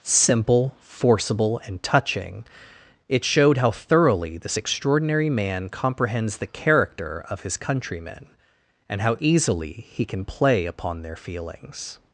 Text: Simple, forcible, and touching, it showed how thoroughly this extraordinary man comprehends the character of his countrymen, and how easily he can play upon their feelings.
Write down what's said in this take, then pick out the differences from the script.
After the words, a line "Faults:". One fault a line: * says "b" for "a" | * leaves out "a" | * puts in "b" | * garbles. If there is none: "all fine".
Simple, forcible, and touching, it showed how thoroughly this extraordinary man comprehends the character of his countrymen, and how easily he can play upon their feelings.
Faults:
all fine